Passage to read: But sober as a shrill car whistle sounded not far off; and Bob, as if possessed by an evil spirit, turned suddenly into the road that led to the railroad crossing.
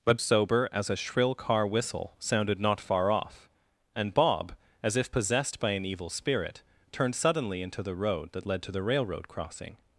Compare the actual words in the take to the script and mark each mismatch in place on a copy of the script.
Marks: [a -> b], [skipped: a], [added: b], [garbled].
But sober as a shrill car whistle sounded not far off; and Bob, as if possessed by an evil spirit, turned suddenly into the road that led to the railroad crossing.